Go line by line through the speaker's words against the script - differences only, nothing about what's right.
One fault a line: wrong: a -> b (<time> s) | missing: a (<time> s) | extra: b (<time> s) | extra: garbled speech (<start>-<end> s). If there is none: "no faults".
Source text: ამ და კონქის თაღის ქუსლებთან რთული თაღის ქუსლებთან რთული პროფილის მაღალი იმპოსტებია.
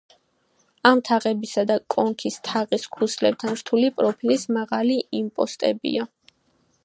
extra: თაღებისა (1.1 s)
missing: თაღის ქუსლებთან რთული (3.9 s)